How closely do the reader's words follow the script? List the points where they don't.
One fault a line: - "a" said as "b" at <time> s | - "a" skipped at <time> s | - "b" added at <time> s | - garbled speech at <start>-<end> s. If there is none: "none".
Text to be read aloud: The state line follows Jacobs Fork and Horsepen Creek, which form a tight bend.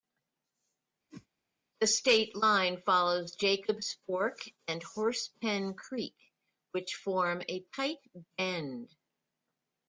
none